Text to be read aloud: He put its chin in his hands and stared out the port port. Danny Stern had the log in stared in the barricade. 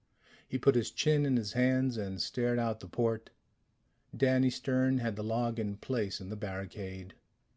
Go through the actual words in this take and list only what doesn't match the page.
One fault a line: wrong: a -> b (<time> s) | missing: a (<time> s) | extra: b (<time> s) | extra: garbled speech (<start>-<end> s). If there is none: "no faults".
wrong: its -> his (0.7 s)
missing: port (3.3 s)
wrong: stared -> place (5.8 s)